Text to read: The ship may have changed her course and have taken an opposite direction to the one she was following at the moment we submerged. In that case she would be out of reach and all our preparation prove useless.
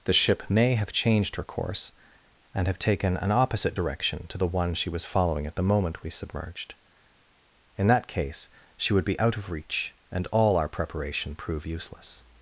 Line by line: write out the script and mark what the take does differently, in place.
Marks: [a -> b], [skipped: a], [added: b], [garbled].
The ship may have changed her course and have taken an opposite direction to the one she was following at the moment we submerged. In that case she would be out of reach and all our preparation prove useless.